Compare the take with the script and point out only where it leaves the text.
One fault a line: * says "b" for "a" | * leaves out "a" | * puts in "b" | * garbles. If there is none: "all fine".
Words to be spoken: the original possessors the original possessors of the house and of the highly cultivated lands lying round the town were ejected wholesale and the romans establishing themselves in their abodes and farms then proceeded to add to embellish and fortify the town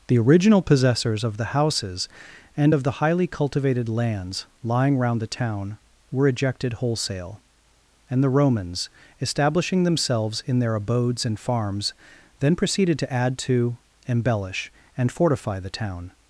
* leaves out "the original possessors"
* says "houses" for "house"